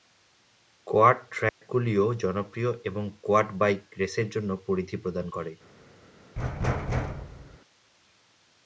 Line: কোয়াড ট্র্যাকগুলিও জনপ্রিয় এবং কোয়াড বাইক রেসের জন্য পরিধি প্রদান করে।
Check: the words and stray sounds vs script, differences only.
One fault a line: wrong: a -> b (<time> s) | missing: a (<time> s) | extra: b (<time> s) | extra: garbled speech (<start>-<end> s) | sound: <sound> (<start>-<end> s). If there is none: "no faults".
sound: dropout (1.5-1.6 s)
sound: thud (6.4-7.6 s)